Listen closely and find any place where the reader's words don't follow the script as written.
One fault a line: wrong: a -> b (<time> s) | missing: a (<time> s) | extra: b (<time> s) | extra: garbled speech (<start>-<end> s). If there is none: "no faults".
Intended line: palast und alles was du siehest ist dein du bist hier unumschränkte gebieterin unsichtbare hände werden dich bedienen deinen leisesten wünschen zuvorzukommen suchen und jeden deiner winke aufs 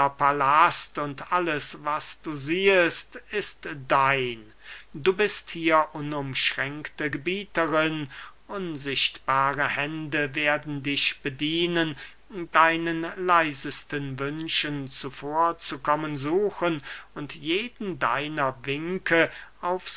no faults